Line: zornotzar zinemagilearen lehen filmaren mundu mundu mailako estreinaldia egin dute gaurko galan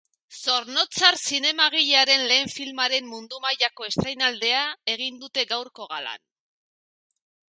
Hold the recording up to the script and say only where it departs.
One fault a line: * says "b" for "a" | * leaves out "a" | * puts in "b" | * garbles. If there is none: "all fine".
* leaves out "mundu"